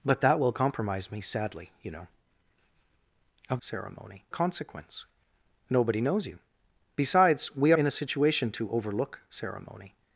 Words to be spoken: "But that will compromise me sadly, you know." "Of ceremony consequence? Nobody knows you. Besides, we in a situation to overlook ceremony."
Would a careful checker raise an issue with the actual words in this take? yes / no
no